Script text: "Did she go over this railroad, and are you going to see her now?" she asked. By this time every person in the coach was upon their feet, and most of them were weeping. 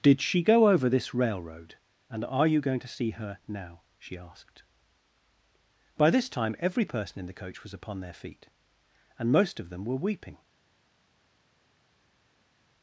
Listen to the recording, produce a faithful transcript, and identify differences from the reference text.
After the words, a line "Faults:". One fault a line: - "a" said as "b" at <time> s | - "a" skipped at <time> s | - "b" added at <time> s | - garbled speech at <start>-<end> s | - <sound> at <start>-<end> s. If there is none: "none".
"Did she go over this railroad, and are you going to see her now?" she asked. By this time every person in the coach was upon their feet, and most of them were weeping.
Faults:
none